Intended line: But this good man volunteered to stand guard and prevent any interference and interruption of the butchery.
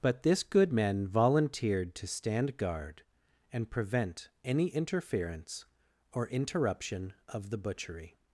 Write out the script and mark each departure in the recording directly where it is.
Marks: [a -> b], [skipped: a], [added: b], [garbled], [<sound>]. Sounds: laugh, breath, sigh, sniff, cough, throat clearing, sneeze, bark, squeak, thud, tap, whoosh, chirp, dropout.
But this good man volunteered to stand guard and prevent any interference [and -> or] interruption of the butchery.